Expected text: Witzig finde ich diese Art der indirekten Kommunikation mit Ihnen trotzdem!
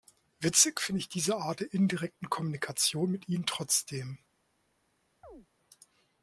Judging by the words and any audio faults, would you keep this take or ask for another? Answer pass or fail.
fail